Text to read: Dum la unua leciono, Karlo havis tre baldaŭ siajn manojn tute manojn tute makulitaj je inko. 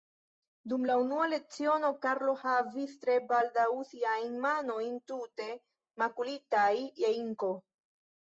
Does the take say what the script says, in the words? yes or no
no